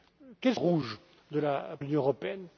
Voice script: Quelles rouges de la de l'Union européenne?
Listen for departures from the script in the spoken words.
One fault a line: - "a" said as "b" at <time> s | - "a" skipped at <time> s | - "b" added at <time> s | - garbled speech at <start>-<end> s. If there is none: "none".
none